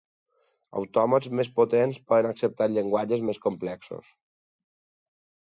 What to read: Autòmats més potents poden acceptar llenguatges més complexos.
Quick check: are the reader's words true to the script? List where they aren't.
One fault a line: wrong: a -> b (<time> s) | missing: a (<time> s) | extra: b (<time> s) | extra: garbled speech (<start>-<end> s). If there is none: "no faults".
no faults